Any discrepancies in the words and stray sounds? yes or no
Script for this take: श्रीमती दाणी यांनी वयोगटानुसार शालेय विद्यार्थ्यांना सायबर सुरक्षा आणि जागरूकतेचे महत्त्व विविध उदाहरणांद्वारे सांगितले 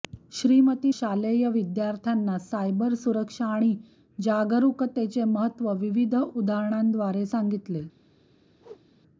yes